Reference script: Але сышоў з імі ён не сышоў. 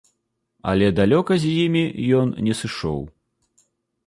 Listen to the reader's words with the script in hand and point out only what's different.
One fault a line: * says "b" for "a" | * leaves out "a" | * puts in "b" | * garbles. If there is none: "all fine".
* says "далёка" for "сышоў"